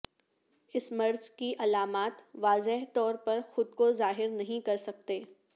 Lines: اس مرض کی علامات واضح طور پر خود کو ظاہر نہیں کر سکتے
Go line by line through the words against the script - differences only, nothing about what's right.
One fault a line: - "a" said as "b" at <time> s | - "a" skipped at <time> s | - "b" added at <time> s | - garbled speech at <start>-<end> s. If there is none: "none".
none